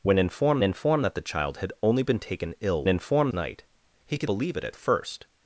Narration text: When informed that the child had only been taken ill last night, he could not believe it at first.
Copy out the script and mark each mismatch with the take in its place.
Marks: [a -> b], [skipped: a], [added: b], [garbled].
When informed [added: informed] that the child had only been taken ill [last -> informed] night, he could [skipped: not] believe it at first.